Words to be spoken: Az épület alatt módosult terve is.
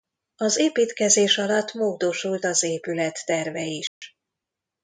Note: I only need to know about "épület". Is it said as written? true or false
false